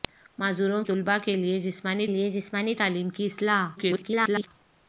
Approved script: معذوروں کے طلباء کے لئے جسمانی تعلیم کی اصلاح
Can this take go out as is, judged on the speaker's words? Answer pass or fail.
fail